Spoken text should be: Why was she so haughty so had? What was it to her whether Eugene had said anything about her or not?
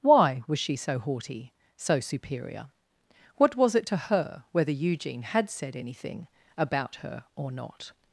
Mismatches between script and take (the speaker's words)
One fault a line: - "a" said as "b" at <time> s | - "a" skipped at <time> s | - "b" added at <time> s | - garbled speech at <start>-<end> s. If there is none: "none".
- "had" said as "superior" at 2.0 s